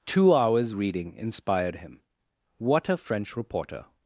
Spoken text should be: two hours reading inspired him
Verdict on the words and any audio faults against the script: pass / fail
fail